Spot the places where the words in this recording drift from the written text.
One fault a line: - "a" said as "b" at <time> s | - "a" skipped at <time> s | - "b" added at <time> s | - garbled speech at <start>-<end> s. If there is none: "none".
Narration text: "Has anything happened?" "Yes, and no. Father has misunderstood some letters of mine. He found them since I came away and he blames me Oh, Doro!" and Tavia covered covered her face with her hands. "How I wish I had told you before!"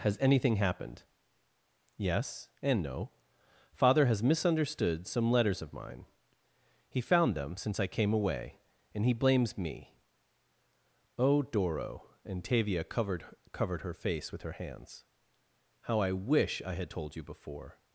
none